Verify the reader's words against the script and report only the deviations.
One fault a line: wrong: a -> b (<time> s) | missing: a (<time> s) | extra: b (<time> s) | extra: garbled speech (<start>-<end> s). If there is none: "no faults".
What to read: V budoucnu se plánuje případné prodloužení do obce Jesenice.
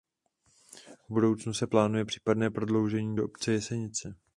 no faults